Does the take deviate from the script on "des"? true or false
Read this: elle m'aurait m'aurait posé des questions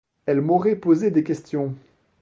false